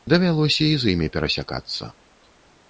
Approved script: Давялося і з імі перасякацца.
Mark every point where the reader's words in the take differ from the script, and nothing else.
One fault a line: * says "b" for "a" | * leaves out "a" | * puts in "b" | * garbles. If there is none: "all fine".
all fine